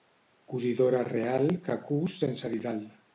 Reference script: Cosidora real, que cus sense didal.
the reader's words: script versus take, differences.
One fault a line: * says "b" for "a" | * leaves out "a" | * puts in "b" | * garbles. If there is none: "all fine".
all fine